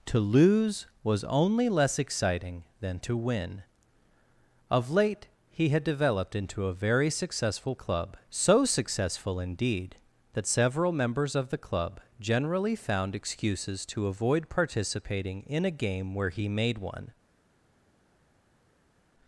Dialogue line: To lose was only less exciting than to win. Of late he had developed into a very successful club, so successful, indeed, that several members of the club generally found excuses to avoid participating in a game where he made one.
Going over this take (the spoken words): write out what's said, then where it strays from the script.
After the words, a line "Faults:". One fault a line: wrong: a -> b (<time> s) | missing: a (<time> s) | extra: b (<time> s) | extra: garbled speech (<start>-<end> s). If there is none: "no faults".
To lose was only less exciting than to win. Of late he had developed into a very successful club, so successful, indeed, that several members of the club generally found excuses to avoid participating in a game where he made one.
Faults:
no faults